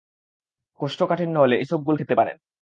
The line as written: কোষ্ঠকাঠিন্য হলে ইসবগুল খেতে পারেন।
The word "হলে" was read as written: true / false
true